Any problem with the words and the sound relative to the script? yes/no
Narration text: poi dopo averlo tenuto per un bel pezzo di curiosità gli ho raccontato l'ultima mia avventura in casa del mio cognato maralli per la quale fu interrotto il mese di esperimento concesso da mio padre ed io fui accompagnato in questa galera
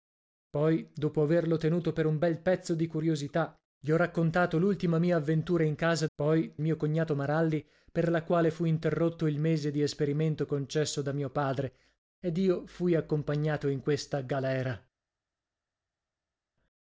yes